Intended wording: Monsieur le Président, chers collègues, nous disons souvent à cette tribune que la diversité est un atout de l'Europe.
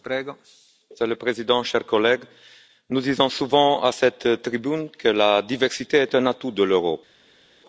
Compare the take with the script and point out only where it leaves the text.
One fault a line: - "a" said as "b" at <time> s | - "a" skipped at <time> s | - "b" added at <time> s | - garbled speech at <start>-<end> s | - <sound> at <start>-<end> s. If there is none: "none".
none